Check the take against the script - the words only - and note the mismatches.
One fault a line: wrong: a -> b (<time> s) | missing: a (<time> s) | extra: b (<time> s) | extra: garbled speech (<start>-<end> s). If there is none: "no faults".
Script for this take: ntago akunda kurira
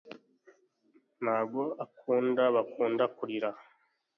extra: bakunda (2.5 s)